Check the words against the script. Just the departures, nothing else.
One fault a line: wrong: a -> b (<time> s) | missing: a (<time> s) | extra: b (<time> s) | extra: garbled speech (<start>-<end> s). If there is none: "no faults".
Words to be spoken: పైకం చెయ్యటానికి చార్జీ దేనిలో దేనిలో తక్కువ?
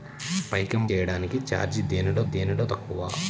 no faults